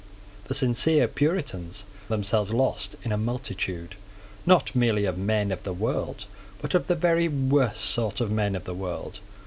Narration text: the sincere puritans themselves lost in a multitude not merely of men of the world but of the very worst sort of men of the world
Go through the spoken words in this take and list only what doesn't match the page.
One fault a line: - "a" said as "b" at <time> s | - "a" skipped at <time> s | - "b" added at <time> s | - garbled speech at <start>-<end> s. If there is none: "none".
none